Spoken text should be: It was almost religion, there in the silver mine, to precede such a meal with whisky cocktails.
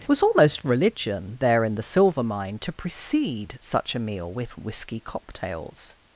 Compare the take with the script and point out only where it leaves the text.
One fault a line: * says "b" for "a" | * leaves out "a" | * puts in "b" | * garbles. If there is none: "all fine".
all fine